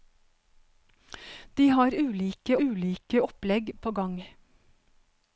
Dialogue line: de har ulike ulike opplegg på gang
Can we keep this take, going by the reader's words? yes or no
yes